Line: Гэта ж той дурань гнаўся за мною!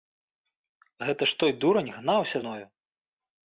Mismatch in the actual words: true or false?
true